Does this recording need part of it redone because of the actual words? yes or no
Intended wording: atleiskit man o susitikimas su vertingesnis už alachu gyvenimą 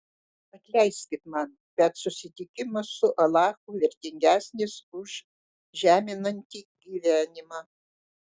yes